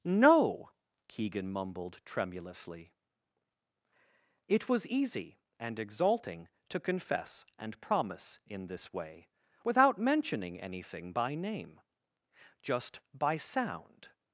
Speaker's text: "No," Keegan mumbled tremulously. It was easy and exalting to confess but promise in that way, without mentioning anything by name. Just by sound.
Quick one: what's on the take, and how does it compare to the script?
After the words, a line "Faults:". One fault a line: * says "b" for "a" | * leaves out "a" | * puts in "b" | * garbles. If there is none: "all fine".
"No," Keegan mumbled tremulously. It was easy and exalting to confess and promise in this way, without mentioning anything by name. Just by sound.
Faults:
* says "and" for "but"
* says "this" for "that"